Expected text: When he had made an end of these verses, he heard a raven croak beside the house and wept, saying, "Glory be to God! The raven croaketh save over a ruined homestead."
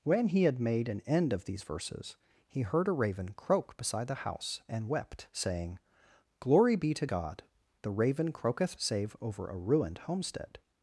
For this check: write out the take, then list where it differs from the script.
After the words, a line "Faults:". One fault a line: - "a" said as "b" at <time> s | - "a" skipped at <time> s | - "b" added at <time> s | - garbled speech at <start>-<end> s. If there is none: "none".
When he had made an end of these verses, he heard a raven croak beside the house and wept, saying, "Glory be to God! The raven croaketh save over a ruined homestead."
Faults:
none